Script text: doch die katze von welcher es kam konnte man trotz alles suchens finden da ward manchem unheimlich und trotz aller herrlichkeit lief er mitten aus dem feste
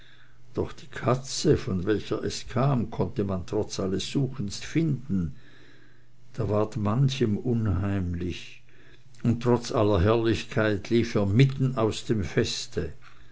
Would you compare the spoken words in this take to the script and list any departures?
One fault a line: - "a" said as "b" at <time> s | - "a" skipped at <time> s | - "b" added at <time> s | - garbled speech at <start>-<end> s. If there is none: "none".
none